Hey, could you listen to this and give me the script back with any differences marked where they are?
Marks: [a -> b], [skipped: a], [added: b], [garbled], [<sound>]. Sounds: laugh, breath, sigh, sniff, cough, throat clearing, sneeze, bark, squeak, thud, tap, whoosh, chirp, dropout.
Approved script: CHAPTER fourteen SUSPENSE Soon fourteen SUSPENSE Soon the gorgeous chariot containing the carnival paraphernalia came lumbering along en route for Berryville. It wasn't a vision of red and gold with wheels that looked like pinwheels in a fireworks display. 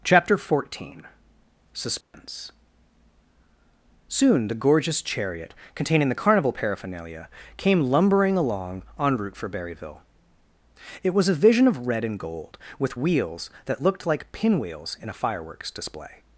CHAPTER fourteen SUSPENSE [dropout] Soon [skipped: fourteen SUSPENSE Soon] the gorgeous chariot containing the carnival paraphernalia came lumbering along en route for Berryville. It [wasn't -> was] a vision of red and gold with wheels that looked like pinwheels in a fireworks display.